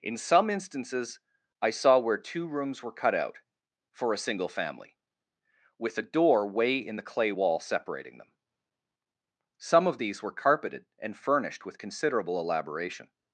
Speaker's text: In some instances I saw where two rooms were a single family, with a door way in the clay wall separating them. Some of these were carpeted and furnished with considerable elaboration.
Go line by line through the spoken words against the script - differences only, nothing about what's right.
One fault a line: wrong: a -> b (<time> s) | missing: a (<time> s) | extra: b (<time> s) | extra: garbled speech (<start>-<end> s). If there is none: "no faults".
extra: cut out for (2.9 s)